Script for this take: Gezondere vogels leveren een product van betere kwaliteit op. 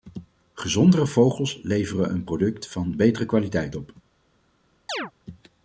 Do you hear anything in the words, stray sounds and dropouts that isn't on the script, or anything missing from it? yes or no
yes